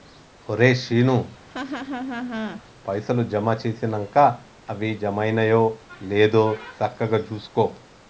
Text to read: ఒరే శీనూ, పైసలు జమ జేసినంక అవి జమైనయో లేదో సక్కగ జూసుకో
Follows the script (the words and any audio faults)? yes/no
no